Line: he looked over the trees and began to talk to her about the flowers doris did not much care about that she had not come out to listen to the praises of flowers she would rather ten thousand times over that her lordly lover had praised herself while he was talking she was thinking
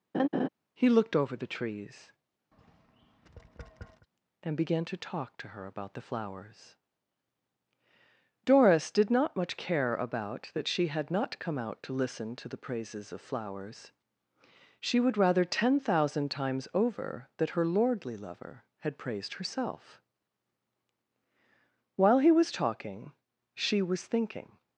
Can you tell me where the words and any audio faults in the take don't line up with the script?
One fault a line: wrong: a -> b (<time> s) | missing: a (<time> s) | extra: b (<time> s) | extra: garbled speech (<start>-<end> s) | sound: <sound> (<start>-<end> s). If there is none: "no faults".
sound: laugh (0.1-0.5 s)
sound: tap (2.5-4.1 s)